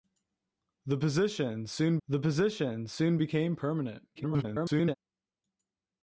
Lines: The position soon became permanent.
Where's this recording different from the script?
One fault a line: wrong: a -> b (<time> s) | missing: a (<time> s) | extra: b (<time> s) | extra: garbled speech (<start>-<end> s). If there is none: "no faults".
extra: the position soon (2.1 s)
extra: garbled speech (4.2-4.9 s)